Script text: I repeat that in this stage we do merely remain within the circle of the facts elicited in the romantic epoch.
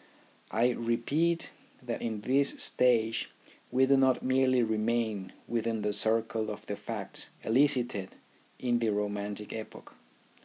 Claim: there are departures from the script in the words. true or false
true